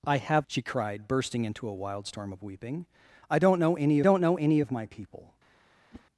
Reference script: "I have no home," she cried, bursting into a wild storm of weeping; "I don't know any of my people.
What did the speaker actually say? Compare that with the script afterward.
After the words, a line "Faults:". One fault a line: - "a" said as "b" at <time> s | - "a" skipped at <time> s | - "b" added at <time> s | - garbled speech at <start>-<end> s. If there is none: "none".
"I have," she cried, bursting into a wild storm of weeping; "I don't know any don't know any of my people.
Faults:
- "no home" skipped at 0.5 s
- "don't know any" added at 4.0 s